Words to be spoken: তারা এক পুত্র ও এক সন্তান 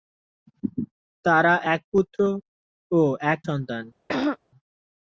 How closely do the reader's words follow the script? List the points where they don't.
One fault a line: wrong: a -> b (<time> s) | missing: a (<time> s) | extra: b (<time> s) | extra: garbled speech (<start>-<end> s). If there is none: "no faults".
no faults